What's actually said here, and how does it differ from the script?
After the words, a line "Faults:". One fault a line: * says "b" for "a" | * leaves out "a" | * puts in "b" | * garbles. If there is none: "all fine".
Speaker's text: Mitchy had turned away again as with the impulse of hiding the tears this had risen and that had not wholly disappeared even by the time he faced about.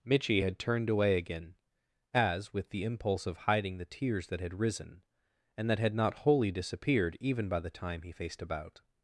Mitchy had turned away again as with the impulse of hiding the tears that had risen and that had not wholly disappeared even by the time he faced about.
Faults:
* says "that" for "this"